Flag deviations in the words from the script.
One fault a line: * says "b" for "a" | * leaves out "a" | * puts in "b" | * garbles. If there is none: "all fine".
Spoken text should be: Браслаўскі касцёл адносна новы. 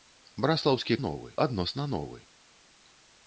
* says "новы" for "касцёл"